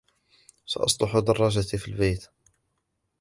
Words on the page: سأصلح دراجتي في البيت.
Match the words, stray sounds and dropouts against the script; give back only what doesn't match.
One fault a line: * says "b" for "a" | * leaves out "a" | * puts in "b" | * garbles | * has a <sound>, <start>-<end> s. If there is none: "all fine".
all fine